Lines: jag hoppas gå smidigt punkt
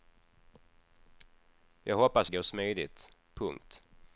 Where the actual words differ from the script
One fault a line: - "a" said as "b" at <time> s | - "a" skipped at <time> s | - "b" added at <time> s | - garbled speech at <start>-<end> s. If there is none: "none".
none